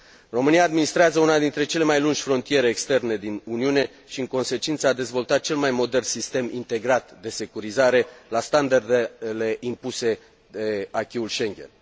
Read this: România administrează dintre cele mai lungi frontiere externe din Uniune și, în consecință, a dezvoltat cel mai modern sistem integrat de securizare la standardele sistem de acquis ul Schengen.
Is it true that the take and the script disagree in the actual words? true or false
true